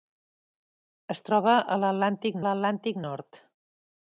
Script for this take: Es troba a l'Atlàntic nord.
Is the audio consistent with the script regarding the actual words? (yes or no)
no